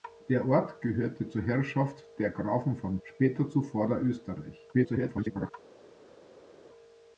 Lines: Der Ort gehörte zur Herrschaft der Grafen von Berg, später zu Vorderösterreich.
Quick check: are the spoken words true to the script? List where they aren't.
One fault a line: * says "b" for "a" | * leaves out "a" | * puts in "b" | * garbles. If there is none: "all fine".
* leaves out "Berg"
* garbles